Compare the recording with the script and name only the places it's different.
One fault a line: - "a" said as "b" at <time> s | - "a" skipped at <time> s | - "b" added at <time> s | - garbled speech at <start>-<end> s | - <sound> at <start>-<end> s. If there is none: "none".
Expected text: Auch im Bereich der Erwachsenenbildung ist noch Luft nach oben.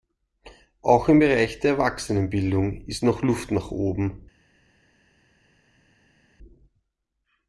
none